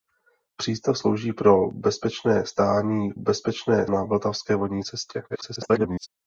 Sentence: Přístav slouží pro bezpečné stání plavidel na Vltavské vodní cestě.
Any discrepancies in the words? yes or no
yes